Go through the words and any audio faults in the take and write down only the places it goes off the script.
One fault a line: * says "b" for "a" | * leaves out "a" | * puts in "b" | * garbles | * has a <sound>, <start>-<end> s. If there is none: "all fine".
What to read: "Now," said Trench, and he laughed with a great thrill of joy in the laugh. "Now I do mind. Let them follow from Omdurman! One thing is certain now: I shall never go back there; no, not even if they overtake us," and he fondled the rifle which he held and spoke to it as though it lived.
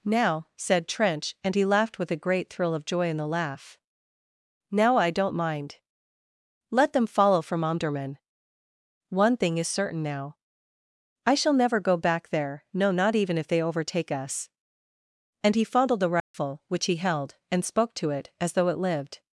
* says "don't" for "do"
* has a dropout, 16.2-16.3 s